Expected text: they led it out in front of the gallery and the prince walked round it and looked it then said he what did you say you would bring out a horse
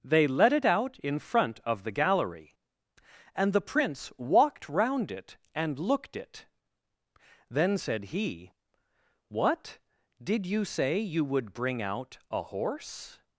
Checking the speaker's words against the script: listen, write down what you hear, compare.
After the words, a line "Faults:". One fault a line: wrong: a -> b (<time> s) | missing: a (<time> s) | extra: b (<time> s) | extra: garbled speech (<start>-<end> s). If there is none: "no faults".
they led it out in front of the gallery and the prince walked round it and looked it then said he what did you say you would bring out a horse
Faults:
no faults